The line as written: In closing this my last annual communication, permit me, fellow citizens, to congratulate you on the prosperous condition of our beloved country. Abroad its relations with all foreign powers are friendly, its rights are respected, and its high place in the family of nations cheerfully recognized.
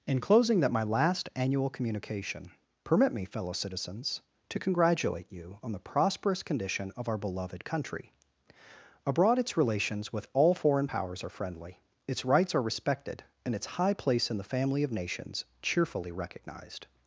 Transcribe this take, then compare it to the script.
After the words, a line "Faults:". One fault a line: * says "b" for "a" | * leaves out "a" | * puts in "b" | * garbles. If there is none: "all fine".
In closing that my last annual communication, permit me, fellow citizens, to congratulate you on the prosperous condition of our beloved country. Abroad its relations with all foreign powers are friendly, its rights are respected, and its high place in the family of nations cheerfully recognized.
Faults:
* says "that" for "this"